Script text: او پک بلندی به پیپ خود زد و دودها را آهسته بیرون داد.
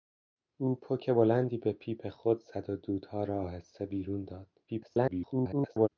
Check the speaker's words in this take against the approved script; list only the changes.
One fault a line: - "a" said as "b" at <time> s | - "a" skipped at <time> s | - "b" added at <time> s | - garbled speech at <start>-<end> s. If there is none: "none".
- garbled speech at 4.7-5.9 s